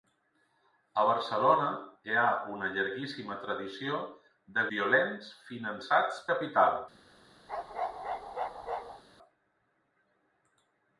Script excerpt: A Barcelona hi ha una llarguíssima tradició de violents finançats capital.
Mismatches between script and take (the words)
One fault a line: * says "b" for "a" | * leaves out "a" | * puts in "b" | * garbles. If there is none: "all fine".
all fine